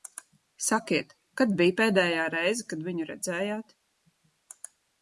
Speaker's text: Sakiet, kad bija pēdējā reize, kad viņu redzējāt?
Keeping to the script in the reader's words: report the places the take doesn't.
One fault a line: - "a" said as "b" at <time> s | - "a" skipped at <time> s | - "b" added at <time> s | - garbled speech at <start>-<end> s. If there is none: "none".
none